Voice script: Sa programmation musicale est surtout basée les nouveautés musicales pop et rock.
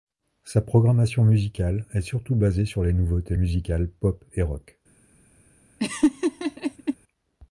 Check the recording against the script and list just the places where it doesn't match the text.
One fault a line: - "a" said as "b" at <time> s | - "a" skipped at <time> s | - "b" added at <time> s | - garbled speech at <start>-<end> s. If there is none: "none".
- "sur" added at 2.6 s